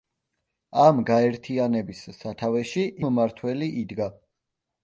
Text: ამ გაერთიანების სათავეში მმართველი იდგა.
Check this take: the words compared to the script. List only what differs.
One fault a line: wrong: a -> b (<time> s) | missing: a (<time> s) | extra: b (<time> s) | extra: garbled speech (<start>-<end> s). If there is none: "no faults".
no faults